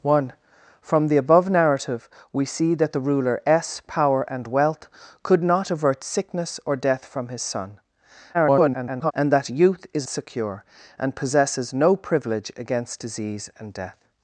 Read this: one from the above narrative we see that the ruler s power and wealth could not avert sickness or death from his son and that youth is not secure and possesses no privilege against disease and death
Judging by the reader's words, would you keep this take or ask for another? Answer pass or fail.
fail